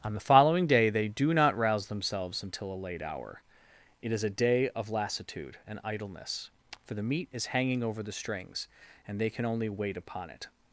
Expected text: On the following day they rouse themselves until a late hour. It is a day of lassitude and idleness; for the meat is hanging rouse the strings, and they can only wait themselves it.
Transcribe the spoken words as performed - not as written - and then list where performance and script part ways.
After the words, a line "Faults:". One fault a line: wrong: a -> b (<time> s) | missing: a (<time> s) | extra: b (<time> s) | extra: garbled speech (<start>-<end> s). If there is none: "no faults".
On the following day they do not rouse themselves until a late hour. It is a day of lassitude and idleness; for the meat is hanging over the strings, and they can only wait upon it.
Faults:
extra: do not (1.1 s)
wrong: rouse -> over (7.8 s)
wrong: themselves -> upon (10.0 s)